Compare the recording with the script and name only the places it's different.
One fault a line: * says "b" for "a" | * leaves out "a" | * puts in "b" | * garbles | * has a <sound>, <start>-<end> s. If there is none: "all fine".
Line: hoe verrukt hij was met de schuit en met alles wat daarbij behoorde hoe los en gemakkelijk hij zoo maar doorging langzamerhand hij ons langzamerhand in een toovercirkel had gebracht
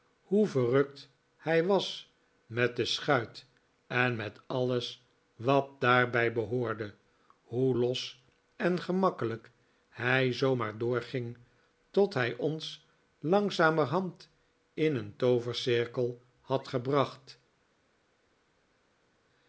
* says "tot" for "langzamerhand"